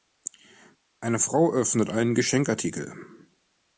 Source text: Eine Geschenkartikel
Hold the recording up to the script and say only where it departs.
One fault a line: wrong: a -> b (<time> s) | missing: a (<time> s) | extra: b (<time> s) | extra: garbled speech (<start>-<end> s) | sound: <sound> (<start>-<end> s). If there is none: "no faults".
extra: Frau öffnet einen (1.2 s)